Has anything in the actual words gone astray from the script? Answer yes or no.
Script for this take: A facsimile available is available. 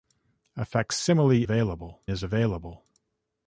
no